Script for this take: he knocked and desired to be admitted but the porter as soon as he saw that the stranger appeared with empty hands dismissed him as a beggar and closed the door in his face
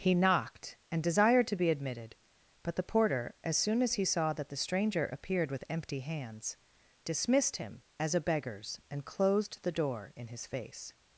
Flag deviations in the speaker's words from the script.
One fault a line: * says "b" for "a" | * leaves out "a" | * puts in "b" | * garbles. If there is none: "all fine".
* says "beggars" for "beggar"